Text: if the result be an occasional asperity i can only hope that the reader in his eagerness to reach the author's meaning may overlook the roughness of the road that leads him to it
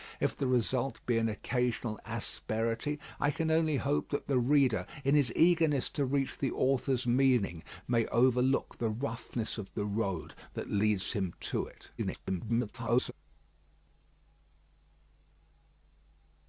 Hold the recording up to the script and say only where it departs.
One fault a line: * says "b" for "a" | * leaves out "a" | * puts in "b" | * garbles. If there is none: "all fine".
* garbles